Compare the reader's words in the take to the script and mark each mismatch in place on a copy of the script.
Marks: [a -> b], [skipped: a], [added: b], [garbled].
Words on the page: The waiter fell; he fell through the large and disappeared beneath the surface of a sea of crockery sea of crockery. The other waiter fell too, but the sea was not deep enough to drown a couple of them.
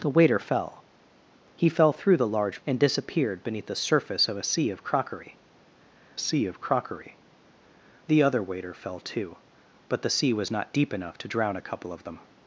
The waiter fell; he fell through the large and disappeared beneath the surface of a sea of crockery sea of crockery. The other waiter fell too, but the sea was not deep enough to drown a couple of them.